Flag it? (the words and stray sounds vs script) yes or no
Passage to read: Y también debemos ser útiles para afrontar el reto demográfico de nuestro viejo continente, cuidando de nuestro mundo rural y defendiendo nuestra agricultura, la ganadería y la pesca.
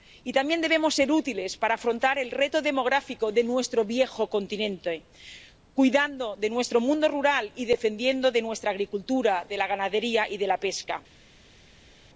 no